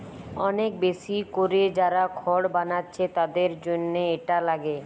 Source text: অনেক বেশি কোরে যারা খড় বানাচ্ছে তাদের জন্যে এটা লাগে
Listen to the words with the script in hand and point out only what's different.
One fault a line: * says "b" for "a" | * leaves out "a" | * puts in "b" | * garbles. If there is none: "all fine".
all fine